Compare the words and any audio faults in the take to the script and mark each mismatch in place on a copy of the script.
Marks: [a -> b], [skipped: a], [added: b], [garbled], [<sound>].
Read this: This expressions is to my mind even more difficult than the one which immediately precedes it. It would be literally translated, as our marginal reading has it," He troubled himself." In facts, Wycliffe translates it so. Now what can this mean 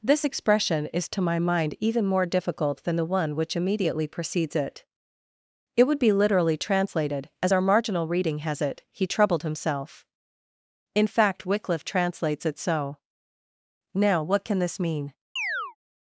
This [expressions -> expression] is to my mind even more difficult than the one which immediately precedes it. It would be literally translated, as our marginal reading has it," He troubled himself." In [facts, -> fact] Wycliffe translates it so. Now what can this mean [chirp]